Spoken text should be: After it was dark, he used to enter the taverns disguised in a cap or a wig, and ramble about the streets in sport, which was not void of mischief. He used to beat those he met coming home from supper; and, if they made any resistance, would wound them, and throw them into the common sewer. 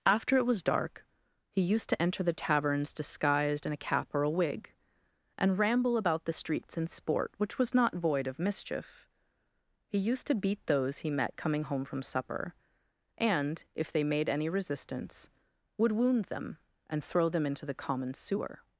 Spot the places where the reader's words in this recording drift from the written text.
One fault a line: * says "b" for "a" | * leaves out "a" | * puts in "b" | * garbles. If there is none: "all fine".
all fine